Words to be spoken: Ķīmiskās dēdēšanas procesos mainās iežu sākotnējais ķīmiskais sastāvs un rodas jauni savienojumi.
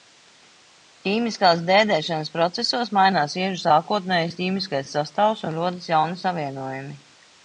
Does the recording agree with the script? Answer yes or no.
yes